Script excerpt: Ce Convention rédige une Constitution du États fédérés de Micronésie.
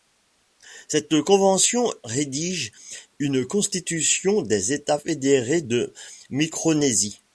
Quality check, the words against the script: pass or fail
fail